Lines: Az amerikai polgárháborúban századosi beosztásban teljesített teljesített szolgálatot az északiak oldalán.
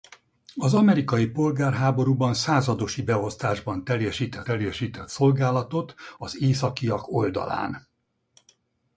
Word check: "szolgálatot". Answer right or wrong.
right